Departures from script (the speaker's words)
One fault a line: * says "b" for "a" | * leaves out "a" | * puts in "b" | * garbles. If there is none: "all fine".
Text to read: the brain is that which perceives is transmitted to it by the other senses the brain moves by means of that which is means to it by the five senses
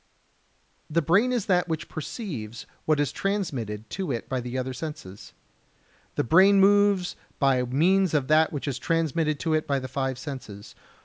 * puts in "what"
* says "transmitted" for "means"